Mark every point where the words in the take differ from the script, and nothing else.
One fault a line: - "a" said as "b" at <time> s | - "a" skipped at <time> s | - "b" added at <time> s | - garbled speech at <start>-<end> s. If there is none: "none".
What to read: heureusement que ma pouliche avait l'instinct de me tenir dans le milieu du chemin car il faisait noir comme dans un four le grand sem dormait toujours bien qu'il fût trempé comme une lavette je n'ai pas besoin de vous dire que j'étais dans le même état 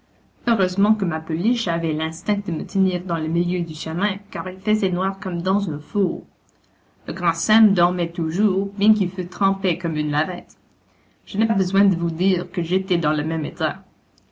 - "pas" skipped at 11.5 s